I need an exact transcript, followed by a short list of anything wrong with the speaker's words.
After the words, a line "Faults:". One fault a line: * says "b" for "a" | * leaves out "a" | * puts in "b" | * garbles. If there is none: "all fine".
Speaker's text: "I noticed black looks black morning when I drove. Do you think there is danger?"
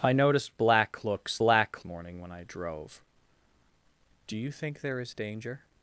"I noticed black looks black morning when I drove. Do you think there is danger?"
Faults:
all fine